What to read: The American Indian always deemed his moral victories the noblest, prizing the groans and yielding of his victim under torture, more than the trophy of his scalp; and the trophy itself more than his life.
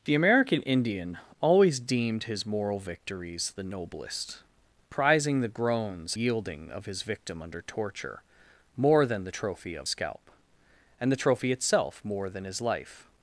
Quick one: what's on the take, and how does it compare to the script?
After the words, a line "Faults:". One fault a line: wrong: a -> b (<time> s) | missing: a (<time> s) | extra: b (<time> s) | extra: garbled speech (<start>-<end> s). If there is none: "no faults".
The American Indian always deemed his moral victories the noblest, prizing the groans yielding of his victim under torture, more than the trophy of scalp; and the trophy itself more than his life.
Faults:
missing: and (6.2 s)
missing: his (9.9 s)